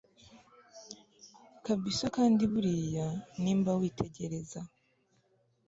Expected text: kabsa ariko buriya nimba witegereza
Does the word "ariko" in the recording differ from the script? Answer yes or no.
yes